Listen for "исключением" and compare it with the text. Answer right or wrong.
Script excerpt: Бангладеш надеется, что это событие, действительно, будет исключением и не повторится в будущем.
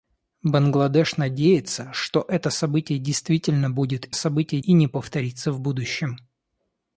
wrong